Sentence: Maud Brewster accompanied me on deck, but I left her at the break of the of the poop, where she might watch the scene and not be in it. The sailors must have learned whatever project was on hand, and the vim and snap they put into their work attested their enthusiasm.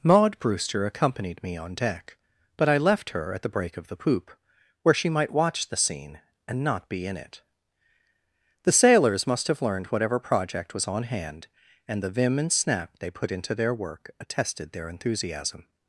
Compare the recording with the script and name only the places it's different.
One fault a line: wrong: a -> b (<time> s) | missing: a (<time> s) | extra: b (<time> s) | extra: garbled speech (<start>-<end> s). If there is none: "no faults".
missing: of the (4.0 s)